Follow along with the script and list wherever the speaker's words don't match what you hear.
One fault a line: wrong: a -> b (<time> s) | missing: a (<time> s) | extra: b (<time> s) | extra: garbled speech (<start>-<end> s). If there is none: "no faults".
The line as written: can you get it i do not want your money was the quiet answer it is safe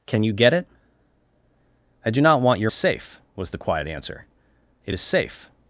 wrong: money -> safe (2.7 s)